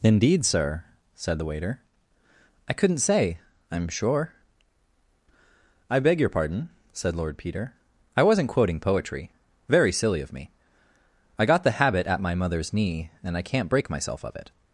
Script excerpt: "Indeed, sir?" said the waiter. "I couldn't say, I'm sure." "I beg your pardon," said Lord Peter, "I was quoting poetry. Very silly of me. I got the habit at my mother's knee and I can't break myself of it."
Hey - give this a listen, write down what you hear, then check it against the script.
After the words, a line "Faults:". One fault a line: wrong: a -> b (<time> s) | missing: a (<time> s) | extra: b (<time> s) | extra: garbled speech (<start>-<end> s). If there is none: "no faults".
"Indeed, sir?" said the waiter. "I couldn't say, I'm sure." "I beg your pardon," said Lord Peter, "I wasn't quoting poetry. Very silly of me. I got the habit at my mother's knee and I can't break myself of it."
Faults:
wrong: was -> wasn't (8.2 s)